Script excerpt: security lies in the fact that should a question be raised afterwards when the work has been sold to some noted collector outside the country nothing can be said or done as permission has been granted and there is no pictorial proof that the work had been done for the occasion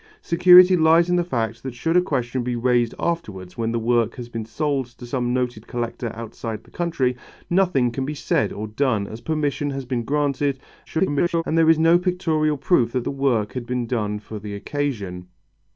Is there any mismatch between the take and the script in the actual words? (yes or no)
yes